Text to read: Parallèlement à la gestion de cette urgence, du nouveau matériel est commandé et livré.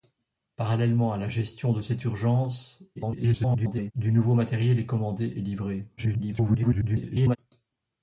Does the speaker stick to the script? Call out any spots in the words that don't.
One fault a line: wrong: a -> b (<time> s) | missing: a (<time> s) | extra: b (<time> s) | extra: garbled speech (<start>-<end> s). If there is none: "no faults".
extra: garbled speech (3.0-3.9 s)
extra: garbled speech (6.0-7.4 s)